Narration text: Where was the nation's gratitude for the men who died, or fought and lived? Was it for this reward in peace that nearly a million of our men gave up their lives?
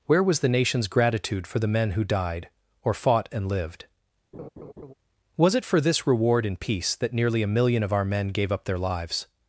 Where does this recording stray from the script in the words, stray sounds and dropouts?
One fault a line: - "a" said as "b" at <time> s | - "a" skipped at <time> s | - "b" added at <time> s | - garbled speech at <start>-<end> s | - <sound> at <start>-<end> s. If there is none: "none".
- laugh at 4.3-4.9 s